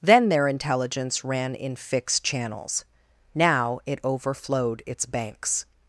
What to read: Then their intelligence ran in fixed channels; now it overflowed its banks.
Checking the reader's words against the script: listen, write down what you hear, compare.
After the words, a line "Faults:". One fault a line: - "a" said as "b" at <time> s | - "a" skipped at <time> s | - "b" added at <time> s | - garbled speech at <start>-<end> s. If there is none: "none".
Then their intelligence ran in fixed channels; now it overflowed its banks.
Faults:
none